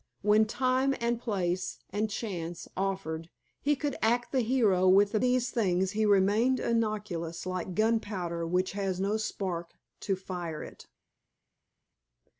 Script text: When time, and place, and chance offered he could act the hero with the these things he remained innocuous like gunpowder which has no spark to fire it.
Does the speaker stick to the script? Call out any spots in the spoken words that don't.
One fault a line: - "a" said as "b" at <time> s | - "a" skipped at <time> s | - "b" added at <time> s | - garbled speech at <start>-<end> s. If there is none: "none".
none